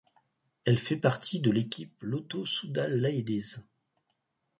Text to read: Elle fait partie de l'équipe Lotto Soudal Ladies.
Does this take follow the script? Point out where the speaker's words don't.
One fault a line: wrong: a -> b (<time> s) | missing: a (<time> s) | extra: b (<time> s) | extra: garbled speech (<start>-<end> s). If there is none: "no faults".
no faults